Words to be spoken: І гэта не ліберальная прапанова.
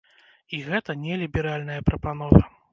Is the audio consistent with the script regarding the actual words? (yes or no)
yes